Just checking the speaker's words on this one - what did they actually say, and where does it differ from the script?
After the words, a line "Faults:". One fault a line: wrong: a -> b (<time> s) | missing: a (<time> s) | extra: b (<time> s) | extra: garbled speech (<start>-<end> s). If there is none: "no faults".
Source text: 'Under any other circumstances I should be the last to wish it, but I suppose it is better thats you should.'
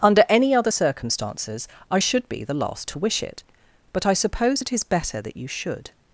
'Under any other circumstances I should be the last to wish it, but I suppose it is better that you should.'
Faults:
wrong: thats -> that (5.2 s)